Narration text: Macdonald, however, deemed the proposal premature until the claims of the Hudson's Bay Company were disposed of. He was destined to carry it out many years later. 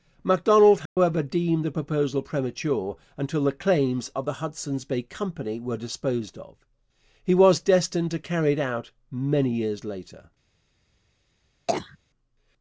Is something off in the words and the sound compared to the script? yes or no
yes